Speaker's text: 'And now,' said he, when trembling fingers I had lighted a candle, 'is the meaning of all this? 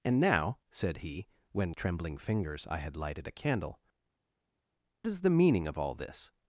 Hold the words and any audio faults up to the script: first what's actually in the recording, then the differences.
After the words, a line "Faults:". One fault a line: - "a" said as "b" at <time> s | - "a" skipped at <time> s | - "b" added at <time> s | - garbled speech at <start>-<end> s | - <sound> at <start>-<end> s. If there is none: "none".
'And now,' said he, when trembling fingers I had lighted a candle, 'is the meaning of all this?
Faults:
none